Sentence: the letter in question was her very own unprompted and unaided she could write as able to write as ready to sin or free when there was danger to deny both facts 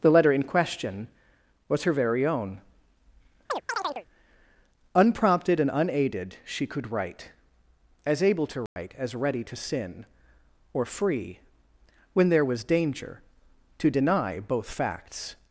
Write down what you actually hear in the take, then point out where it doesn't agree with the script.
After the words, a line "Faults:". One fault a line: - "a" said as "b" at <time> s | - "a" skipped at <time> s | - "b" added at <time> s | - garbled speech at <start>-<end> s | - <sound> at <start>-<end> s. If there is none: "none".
the letter in question was her very own unprompted and unaided she could write as able to write as ready to sin or free when there was danger to deny both facts
Faults:
- chirp at 3.5-4.1 s
- dropout at 8.7-8.8 s